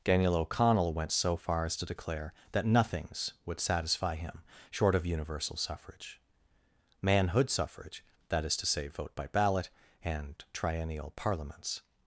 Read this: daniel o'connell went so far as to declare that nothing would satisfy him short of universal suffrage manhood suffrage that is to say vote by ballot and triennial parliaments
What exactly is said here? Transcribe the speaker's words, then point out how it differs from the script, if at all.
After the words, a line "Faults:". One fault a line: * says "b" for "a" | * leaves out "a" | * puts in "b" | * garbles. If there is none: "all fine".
daniel o'connell went so far as to declare that nothings would satisfy him short of universal suffrage manhood suffrage that is to say vote by ballot and triennial parliaments
Faults:
* says "nothings" for "nothing"